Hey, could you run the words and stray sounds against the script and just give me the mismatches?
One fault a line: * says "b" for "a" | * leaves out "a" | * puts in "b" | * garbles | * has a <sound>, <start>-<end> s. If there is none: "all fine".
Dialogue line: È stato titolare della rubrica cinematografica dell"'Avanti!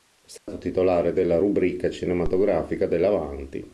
* has a dropout, 0.4-0.5 s